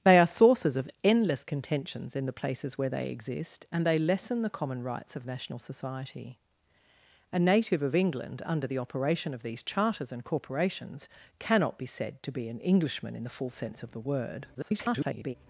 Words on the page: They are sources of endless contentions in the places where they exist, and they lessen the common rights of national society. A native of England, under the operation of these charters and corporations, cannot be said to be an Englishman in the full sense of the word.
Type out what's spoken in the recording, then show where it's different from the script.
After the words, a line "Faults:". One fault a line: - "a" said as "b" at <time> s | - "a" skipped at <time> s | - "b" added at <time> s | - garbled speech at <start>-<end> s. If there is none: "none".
They are sources of endless contentions in the places where they exist, and they lessen the common rights of national society. A native of England, under the operation of these charters and corporations, cannot be said to be an Englishman in the full sense of the word. [garbled]
Faults:
- garbled speech at 14.5-15.4 s